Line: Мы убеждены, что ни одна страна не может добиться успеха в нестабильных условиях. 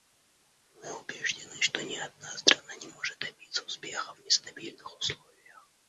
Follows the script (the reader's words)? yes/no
yes